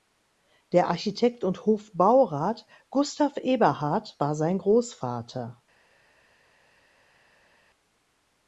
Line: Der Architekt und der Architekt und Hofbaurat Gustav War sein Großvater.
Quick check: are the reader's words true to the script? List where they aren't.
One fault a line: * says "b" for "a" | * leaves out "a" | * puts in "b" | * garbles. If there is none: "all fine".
* leaves out "der Architekt und"
* puts in "Eberhard"